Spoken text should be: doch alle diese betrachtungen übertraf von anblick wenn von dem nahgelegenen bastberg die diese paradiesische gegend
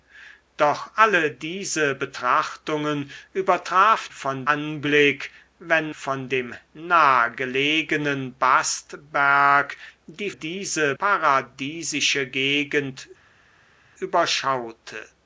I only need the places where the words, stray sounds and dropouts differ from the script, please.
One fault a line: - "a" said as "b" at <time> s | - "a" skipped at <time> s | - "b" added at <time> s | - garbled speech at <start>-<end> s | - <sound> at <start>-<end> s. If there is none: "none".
none